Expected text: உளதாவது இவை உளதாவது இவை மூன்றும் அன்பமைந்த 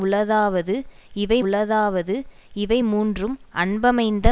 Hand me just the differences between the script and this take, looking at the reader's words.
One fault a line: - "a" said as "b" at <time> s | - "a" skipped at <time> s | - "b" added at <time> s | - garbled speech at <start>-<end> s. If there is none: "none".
none